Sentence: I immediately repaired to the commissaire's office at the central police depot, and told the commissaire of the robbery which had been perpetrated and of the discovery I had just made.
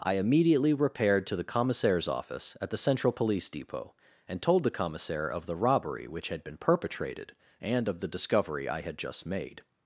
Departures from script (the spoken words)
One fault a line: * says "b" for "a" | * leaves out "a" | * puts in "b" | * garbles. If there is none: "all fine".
all fine